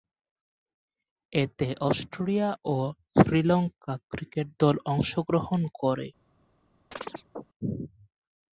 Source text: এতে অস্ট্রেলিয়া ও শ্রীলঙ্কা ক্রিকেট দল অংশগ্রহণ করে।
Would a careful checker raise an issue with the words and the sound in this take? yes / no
yes